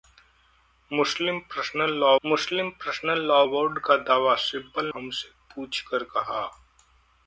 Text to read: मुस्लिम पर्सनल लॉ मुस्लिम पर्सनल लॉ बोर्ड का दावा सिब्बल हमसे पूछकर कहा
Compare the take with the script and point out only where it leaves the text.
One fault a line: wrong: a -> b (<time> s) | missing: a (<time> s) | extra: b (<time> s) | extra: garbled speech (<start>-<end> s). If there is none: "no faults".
no faults